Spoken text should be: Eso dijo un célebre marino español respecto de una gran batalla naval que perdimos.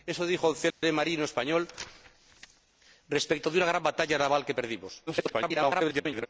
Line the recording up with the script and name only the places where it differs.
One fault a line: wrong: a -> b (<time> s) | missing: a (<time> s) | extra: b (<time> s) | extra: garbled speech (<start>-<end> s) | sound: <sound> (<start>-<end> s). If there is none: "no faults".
sound: dropout (0.7-0.8 s)
extra: garbled speech (5.1-6.3 s)